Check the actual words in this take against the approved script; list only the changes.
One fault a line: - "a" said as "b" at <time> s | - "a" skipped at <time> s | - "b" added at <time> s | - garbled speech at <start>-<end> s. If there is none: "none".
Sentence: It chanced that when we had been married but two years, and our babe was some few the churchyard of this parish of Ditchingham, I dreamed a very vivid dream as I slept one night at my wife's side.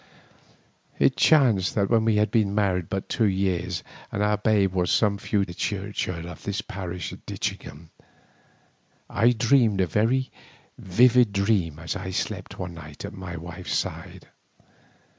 none